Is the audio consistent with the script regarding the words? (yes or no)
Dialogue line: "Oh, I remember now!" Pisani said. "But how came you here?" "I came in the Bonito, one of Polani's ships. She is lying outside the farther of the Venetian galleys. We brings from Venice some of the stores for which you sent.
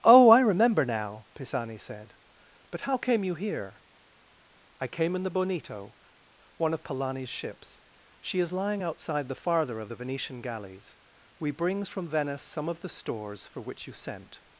yes